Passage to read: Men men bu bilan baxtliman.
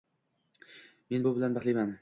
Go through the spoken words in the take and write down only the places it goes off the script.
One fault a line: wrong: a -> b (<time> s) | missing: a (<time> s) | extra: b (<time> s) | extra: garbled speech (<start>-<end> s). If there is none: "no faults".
missing: men (1.3 s)